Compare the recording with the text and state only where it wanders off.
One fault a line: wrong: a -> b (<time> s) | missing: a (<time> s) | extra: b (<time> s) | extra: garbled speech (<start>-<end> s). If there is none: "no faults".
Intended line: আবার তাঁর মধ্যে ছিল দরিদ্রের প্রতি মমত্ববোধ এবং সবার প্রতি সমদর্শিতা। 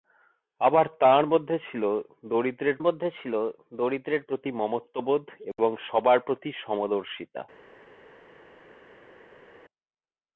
extra: মধ্যে ছিল দরিদ্রের (2.8 s)